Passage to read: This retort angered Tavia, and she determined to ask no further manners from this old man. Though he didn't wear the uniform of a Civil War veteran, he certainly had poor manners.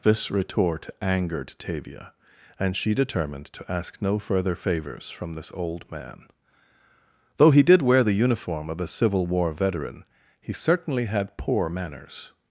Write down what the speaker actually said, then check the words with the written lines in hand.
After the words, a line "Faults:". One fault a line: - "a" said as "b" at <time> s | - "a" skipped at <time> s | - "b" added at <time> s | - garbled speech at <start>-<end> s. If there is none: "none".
This retort angered Tavia, and she determined to ask no further favors from this old man. Though he did wear the uniform of a Civil War veteran, he certainly had poor manners.
Faults:
- "manners" said as "favors" at 4.5 s
- "didn't" said as "did" at 7.6 s